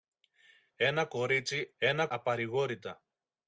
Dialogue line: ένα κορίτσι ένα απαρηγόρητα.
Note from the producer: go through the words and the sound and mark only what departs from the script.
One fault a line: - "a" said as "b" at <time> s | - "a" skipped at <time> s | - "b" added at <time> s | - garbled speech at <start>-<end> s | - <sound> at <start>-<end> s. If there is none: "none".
none